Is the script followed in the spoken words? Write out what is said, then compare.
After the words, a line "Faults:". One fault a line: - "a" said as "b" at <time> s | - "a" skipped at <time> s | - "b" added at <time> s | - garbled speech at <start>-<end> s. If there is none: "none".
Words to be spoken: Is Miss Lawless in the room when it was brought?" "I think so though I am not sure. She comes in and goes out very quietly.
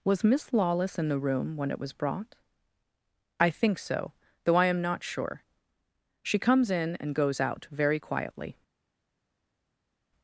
Was Miss Lawless in the room when it was brought?" "I think so though I am not sure. She comes in and goes out very quietly.
Faults:
- "Is" said as "Was" at 0.0 s